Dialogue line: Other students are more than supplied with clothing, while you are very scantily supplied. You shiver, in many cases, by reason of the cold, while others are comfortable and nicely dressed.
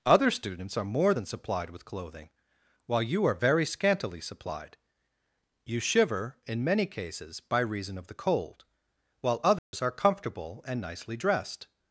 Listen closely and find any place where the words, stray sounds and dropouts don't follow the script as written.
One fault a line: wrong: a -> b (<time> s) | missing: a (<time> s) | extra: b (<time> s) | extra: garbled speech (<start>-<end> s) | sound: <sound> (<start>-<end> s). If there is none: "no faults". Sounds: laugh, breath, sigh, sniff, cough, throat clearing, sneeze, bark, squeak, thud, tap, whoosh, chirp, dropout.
sound: dropout (9.6-9.7 s)